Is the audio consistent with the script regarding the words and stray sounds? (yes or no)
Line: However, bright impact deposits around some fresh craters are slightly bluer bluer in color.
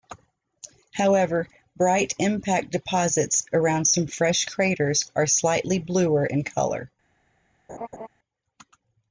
no